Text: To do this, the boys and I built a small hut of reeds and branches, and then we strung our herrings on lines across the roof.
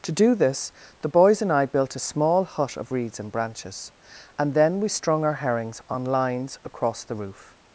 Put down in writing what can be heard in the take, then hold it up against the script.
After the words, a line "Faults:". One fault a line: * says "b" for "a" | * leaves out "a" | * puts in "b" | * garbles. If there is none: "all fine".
To do this, the boys and I built a small hut of reeds and branches, and then we strung our herrings on lines across the roof.
Faults:
all fine